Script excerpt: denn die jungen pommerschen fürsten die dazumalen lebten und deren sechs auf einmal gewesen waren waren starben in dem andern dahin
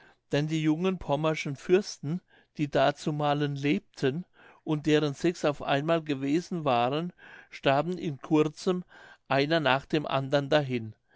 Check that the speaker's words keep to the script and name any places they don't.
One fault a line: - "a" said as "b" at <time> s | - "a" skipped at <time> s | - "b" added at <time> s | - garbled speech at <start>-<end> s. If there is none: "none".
- "waren" skipped at 7.1 s
- "kurzem einer nach" added at 8.2 s